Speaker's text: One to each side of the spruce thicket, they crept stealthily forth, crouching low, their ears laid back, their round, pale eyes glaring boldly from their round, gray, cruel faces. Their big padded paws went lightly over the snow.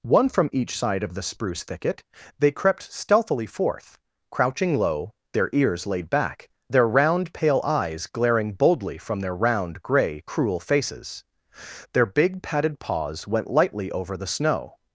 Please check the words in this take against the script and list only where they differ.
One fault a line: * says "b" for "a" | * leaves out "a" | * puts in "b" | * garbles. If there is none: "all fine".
* says "from" for "to"